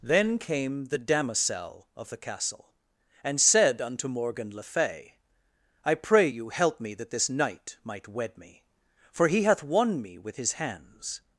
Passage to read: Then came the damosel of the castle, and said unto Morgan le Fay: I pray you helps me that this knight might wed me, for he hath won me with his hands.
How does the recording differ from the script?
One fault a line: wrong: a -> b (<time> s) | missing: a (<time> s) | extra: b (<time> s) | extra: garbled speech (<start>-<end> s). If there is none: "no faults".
wrong: helps -> help (6.5 s)